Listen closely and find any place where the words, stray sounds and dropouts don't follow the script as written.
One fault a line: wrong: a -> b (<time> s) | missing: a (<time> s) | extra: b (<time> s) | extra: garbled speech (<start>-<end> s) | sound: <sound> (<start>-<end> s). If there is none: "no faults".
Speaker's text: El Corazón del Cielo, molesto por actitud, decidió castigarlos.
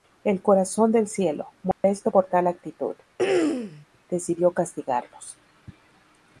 sound: dropout (1.7-1.8 s)
extra: tal (2.2 s)
sound: throat clearing (3.2-3.9 s)